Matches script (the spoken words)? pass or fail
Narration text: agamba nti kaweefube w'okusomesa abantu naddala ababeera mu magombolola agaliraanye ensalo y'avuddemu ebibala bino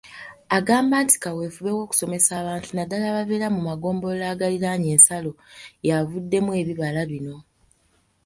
pass